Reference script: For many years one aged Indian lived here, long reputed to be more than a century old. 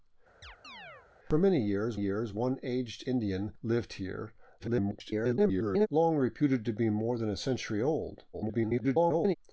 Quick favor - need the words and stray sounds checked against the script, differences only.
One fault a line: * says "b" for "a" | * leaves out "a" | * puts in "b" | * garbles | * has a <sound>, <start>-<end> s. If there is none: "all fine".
* has a chirp, 0.4-1.1 s
* puts in "years"
* garbles
* garbles